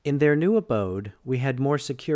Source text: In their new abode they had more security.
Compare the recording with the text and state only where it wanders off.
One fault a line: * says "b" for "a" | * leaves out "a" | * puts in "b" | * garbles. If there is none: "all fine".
* says "we" for "they"